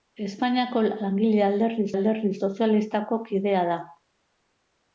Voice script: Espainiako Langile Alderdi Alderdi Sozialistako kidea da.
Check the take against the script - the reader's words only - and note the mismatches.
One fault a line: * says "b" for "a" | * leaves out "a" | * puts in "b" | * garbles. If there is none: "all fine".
all fine